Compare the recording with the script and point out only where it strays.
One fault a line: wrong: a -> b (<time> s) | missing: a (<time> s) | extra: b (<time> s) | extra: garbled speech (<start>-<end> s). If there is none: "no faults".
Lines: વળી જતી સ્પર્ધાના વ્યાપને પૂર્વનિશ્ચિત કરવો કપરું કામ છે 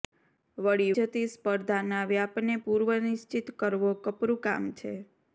no faults